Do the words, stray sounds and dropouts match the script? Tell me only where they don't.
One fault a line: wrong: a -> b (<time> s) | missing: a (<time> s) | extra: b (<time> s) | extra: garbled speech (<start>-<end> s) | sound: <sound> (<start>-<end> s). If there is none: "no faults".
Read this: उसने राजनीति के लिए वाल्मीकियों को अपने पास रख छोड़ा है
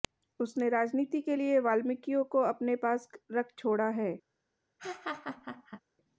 sound: laugh (4.8-5.8 s)